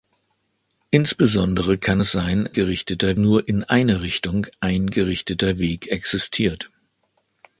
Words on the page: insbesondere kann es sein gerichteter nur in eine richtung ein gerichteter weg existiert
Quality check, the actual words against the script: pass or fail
pass